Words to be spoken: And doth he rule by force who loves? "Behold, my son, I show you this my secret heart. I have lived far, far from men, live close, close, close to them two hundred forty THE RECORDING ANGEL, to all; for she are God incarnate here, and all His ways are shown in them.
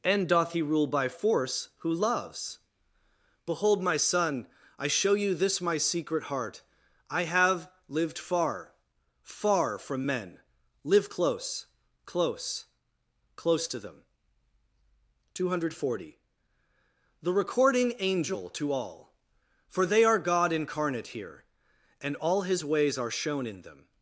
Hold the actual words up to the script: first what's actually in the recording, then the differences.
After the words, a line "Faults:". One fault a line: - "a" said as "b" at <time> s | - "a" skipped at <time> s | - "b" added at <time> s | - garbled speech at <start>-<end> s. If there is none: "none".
And doth he rule by force who loves? "Behold, my son, I show you this my secret heart. I have lived far, far from men, live close, close, close to them two hundred forty THE RECORDING ANGEL, to all; for they are God incarnate here, and all His ways are shown in them.
Faults:
- "she" said as "they" at 19.8 s